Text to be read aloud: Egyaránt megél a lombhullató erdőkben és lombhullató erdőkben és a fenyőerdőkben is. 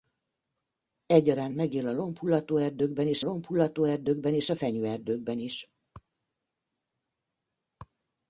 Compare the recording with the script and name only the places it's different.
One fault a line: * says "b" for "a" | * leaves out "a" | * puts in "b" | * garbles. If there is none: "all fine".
all fine